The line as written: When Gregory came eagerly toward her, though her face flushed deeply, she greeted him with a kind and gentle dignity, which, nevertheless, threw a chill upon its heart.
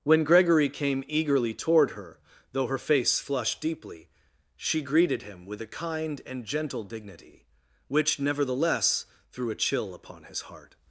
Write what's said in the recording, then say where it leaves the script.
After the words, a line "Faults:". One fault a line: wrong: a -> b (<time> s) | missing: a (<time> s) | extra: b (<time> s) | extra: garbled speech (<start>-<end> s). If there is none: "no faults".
When Gregory came eagerly toward her, though her face flushed deeply, she greeted him with a kind and gentle dignity, which, nevertheless, threw a chill upon his heart.
Faults:
wrong: its -> his (10.2 s)